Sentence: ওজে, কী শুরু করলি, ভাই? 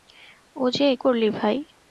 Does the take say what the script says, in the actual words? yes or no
no